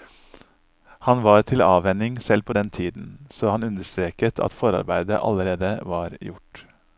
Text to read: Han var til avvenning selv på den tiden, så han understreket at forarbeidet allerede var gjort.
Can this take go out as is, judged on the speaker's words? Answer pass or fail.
pass